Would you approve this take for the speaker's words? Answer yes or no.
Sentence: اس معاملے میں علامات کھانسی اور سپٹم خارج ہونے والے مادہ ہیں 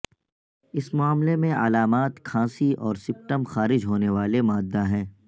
yes